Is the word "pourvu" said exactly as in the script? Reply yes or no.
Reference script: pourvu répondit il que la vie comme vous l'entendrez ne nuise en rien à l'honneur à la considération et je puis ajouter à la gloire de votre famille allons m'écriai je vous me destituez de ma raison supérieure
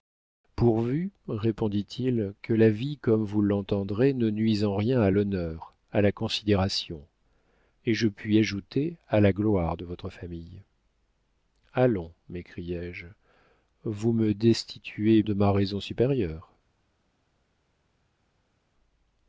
yes